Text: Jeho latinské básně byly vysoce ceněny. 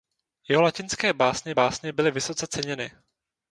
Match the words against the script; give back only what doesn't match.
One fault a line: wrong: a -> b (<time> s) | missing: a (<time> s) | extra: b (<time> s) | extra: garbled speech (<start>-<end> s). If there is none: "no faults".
extra: básně (1.5 s)